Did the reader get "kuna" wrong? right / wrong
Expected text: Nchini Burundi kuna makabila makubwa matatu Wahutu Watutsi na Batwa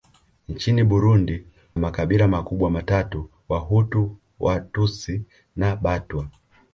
wrong